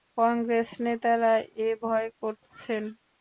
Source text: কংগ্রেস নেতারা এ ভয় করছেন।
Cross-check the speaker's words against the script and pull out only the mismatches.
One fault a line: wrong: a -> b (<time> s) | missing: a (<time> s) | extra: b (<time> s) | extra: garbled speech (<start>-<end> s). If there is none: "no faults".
no faults